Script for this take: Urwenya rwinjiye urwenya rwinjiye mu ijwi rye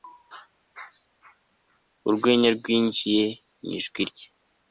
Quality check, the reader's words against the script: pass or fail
fail